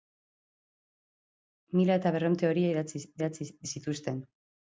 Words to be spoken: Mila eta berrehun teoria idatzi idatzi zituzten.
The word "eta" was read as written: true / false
true